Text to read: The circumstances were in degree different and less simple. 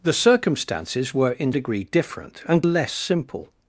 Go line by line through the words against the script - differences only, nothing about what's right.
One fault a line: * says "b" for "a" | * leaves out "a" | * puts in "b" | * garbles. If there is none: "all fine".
all fine